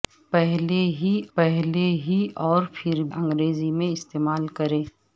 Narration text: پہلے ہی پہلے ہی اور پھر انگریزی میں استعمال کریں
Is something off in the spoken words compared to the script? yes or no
no